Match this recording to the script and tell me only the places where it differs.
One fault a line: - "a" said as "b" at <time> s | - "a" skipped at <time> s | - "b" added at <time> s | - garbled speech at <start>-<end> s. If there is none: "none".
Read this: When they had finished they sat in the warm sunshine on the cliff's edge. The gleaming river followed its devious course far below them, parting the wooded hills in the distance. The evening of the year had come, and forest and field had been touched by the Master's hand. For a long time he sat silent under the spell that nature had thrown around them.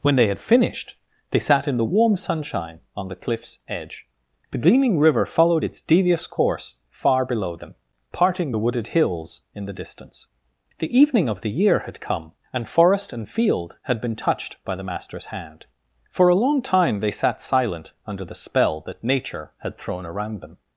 - "he" said as "they" at 17.0 s